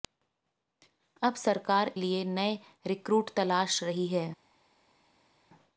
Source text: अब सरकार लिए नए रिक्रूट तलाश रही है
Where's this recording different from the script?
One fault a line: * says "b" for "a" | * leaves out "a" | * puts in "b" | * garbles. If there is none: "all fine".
all fine